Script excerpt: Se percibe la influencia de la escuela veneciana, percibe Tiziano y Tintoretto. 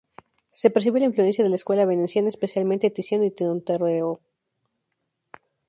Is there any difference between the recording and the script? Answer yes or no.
yes